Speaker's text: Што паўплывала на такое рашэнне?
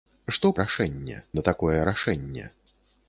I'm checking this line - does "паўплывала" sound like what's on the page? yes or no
no